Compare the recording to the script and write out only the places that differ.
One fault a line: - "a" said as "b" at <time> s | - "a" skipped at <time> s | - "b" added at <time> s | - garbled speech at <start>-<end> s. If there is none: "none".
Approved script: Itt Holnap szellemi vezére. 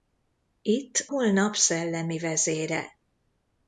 none